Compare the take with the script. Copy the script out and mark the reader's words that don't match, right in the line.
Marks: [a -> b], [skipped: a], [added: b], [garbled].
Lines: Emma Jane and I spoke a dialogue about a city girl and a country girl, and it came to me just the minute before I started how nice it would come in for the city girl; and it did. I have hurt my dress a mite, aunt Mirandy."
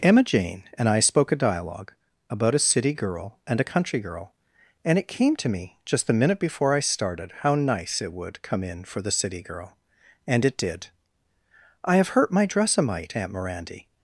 Emma Jane and I spoke a dialogue about a city girl and a country girl, and it came to me just the minute before I started how nice it would come in for the city girl; and it did. I have hurt my dress a mite, aunt Mirandy."